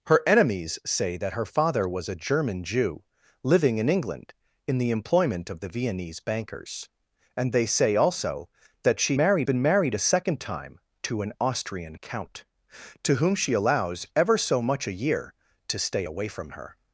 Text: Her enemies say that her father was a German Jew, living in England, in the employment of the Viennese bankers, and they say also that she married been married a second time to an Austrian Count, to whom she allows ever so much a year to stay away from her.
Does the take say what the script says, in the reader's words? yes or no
yes